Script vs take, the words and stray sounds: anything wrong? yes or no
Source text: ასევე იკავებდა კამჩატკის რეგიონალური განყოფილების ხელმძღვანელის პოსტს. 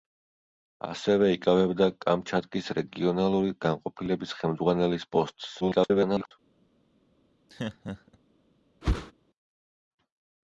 yes